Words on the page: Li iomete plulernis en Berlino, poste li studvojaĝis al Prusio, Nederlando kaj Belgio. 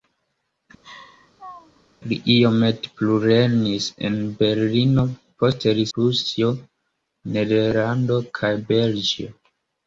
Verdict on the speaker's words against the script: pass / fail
fail